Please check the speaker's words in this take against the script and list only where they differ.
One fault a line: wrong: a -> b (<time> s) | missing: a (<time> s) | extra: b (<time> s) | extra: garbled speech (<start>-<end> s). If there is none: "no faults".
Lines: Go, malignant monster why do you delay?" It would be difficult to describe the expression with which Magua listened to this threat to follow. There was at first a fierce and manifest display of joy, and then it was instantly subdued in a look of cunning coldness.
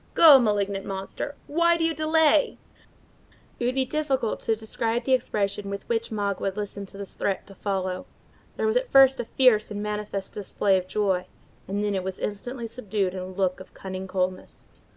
no faults